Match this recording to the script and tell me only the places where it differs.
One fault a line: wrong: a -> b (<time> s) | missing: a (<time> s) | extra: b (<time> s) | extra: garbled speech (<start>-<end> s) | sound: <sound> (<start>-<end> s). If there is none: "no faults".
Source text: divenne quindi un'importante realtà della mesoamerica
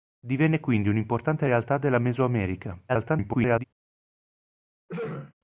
extra: garbled speech (2.9-3.6 s)
sound: throat clearing (4.9-5.3 s)